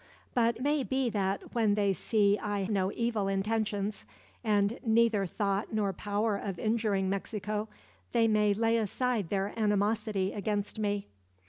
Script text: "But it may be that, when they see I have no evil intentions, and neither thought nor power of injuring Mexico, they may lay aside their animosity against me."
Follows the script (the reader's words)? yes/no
no